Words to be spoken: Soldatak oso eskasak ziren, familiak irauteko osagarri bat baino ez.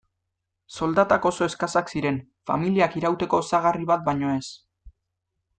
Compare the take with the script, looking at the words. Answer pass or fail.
pass